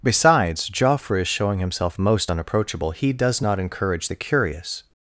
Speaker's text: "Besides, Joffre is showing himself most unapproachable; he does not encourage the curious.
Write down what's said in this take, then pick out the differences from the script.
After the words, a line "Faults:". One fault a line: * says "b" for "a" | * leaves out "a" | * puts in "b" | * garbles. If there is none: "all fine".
"Besides, Joffre is showing himself most unapproachable; he does not encourage the curious.
Faults:
all fine